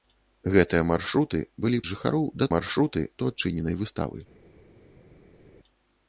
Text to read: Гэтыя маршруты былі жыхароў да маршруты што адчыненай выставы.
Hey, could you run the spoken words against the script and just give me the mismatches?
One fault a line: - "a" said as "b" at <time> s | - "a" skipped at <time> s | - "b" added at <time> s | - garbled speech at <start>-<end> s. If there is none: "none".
none